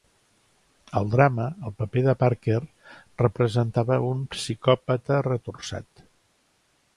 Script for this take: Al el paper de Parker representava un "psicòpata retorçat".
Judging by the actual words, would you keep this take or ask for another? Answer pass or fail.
fail